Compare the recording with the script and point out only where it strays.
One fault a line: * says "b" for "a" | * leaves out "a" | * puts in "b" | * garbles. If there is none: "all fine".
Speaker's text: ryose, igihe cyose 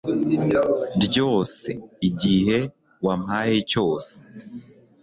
* puts in "wampaye"